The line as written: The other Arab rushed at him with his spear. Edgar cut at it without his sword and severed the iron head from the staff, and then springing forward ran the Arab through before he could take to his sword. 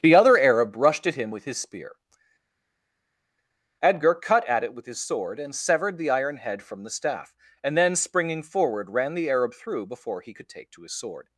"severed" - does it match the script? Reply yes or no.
yes